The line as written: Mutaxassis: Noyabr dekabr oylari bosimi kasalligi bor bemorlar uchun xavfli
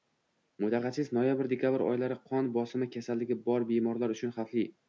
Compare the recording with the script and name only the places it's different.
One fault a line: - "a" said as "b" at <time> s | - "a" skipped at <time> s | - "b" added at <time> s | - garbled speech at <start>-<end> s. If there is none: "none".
- "qon" added at 2.3 s